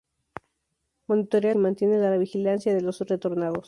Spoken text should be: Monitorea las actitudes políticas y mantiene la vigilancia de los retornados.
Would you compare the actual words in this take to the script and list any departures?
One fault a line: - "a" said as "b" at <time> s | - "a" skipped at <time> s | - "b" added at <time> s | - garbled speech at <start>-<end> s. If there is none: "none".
- "las actitudes políticas" skipped at 1.5 s